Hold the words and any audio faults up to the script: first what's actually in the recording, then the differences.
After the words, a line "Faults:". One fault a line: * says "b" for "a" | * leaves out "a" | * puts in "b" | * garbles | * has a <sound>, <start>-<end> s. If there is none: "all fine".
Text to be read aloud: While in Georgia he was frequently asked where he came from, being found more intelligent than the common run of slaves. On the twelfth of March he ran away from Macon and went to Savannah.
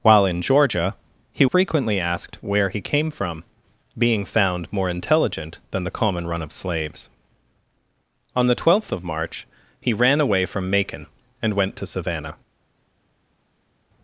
While in Georgia he frequently asked where he came from, being found more intelligent than the common run of slaves. On the twelfth of March he ran away from Macon and went to Savannah.
Faults:
* leaves out "was"